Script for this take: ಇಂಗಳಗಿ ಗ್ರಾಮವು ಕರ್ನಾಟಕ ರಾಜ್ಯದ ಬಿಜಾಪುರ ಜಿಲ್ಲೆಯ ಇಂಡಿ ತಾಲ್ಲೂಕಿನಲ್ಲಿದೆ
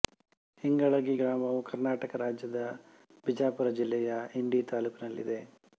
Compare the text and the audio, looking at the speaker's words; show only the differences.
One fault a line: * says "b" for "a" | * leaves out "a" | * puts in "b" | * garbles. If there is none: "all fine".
all fine